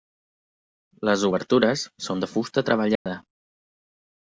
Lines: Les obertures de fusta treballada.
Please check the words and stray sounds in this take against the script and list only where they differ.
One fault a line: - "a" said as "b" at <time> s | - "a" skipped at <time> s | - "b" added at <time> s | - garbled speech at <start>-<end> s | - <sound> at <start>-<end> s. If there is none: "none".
- "són" added at 2.1 s
- dropout at 3.0-3.1 s